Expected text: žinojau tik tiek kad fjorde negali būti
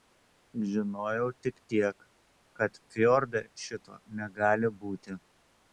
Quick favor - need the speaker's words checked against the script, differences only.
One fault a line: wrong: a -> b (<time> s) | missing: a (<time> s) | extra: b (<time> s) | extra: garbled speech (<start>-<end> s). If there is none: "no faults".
extra: šito (3.7 s)